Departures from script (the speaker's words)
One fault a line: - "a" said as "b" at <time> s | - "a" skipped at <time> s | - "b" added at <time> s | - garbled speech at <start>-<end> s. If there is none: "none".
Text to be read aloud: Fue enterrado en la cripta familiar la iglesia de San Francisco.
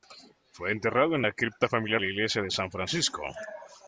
none